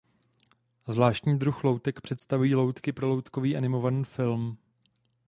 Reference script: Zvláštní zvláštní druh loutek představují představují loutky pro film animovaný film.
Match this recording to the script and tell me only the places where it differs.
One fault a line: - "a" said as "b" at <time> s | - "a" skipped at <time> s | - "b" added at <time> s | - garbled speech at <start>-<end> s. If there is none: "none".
- "zvláštní" skipped at 1.4 s
- "představují" skipped at 2.5 s
- "film" said as "loutkový" at 3.1 s